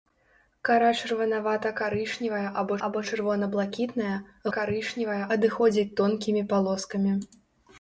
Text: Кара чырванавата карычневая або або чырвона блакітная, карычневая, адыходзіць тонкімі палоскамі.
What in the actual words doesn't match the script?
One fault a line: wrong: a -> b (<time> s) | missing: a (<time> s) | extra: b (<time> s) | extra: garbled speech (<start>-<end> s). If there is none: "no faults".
no faults